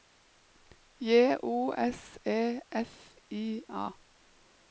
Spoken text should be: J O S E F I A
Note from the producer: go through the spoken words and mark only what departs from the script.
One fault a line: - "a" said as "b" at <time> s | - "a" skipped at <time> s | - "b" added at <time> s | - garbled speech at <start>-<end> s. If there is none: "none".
none